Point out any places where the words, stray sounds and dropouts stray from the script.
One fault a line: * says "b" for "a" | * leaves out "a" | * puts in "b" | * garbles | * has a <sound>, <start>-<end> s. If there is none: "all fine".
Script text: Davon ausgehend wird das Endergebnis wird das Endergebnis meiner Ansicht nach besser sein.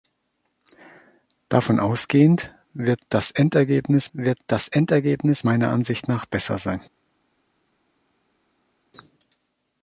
all fine